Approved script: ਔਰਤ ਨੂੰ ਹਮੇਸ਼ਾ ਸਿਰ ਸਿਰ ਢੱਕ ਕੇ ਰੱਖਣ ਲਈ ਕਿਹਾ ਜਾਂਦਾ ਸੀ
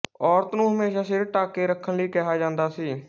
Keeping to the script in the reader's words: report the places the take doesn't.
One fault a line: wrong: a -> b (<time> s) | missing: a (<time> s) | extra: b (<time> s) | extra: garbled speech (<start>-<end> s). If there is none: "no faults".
missing: ਸਿਰ (1.2 s)